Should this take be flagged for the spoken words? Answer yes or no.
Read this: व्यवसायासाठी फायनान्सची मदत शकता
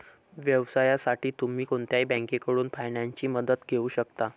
yes